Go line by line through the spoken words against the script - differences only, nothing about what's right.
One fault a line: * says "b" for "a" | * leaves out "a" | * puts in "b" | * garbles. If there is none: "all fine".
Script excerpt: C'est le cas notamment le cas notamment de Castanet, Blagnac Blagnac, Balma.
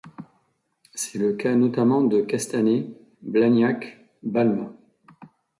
* leaves out "le cas notamment"
* leaves out "Blagnac"